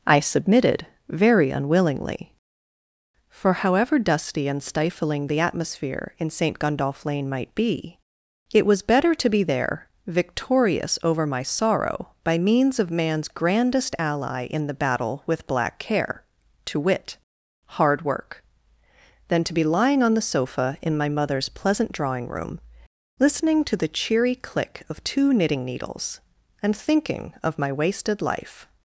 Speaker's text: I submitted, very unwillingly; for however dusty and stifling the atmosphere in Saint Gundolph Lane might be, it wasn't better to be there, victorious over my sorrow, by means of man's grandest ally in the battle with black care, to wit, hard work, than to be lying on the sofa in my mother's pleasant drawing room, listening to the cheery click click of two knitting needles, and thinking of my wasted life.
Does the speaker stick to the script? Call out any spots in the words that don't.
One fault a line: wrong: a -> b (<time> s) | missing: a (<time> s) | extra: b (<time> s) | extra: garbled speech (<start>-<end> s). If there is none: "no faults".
wrong: wasn't -> was (8.7 s)
missing: click (24.8 s)